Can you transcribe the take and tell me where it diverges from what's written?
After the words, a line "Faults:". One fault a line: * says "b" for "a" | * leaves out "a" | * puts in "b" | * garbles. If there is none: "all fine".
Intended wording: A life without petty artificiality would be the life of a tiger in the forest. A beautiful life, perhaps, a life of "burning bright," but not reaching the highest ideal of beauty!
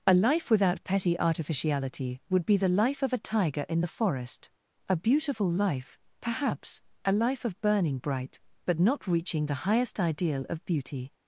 A life without petty artificiality would be the life of a tiger in the forest. A beautiful life, perhaps, a life of "burning bright," but not reaching the highest ideal of beauty!
Faults:
all fine